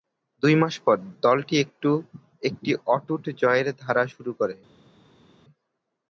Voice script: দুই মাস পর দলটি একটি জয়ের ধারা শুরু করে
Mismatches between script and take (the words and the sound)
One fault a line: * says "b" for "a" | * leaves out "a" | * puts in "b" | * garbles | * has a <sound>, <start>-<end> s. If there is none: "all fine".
* puts in "অটুট"